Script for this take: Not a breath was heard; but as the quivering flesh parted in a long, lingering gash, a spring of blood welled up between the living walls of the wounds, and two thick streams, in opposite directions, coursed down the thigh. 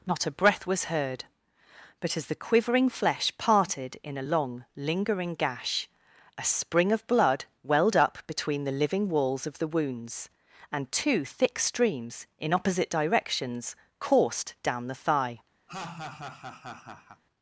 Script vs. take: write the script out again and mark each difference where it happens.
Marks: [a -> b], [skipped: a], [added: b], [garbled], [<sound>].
Not a breath was heard; but as the quivering flesh parted in a long, lingering gash, a spring of blood welled up between the living walls of the wounds, and two thick streams, in opposite directions, coursed down the thigh. [laugh]